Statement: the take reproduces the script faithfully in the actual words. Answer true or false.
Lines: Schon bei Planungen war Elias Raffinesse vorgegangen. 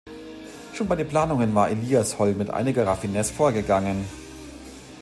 false